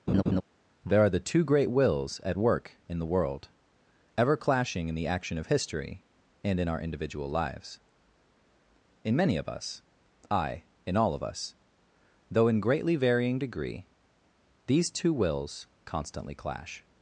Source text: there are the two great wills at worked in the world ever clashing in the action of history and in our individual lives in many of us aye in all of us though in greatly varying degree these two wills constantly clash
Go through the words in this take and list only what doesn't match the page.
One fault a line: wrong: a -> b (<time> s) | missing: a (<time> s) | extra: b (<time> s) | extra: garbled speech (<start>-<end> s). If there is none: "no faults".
wrong: worked -> work (2.4 s)